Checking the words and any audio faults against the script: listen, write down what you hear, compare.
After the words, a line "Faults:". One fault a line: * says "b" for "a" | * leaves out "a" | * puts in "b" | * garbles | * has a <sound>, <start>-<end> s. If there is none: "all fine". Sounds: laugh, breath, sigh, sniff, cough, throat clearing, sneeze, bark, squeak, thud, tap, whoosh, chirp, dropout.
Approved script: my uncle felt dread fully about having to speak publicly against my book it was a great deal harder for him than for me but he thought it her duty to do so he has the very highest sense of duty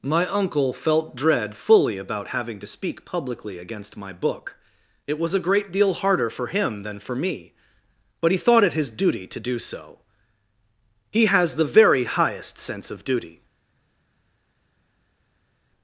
my uncle felt dread fully about having to speak publicly against my book it was a great deal harder for him than for me but he thought it his duty to do so he has the very highest sense of duty
Faults:
* says "his" for "her"